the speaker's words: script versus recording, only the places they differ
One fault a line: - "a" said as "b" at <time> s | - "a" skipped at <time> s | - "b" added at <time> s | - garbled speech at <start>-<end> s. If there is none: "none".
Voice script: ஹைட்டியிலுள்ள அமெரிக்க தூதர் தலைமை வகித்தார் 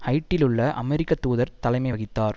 none